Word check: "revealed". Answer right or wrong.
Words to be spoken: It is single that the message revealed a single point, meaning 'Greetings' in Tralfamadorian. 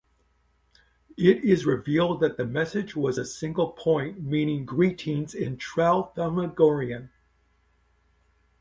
wrong